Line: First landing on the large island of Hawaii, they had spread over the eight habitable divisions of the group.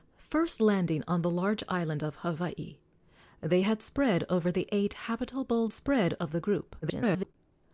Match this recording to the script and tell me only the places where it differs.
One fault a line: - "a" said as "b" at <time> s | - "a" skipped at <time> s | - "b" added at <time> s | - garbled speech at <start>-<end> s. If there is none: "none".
- "divisions" said as "spread" at 5.7 s
- garbled speech at 6.8-7.3 s